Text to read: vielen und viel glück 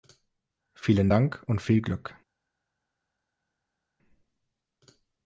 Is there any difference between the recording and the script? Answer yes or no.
yes